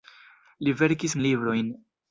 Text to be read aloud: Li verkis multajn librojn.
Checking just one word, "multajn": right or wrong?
wrong